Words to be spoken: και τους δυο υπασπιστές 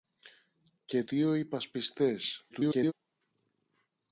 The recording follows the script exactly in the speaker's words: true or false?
false